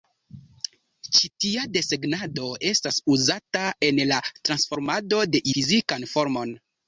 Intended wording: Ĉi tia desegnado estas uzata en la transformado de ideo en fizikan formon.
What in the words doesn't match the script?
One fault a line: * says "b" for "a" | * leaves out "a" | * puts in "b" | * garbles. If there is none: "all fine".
* leaves out "ideo en"